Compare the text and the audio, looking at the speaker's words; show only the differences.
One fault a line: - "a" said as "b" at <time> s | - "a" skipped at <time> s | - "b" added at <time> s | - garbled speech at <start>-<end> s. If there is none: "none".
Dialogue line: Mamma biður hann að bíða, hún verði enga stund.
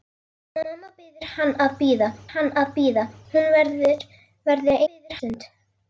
- "hann að bíða" added at 2.3 s
- "enga" said as "biður" at 4.9 s